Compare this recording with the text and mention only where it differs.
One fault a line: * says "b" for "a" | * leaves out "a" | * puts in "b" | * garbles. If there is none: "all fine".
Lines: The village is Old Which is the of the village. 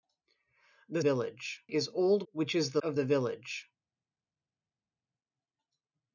all fine